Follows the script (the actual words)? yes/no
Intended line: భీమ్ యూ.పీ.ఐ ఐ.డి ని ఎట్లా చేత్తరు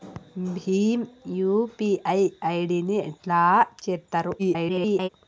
no